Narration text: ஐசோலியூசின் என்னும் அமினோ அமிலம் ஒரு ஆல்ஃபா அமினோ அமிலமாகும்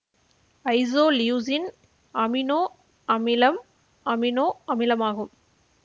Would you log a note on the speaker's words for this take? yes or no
yes